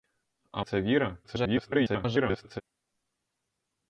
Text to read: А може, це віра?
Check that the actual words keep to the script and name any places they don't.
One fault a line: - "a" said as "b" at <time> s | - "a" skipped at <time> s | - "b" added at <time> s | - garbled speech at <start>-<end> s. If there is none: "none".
- "може" skipped at 0.6 s
- garbled speech at 1.2-2.6 s